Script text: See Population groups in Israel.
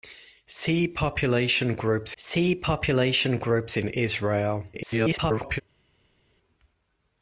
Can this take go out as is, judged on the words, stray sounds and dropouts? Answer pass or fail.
fail